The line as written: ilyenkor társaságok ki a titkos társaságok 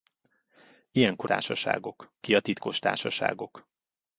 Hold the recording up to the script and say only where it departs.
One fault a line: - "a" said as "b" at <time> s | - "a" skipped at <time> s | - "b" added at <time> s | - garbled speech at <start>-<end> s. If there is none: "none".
none